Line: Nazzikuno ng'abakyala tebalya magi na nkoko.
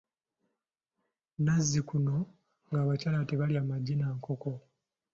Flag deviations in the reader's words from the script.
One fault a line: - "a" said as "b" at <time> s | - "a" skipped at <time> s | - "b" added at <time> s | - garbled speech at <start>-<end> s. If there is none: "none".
none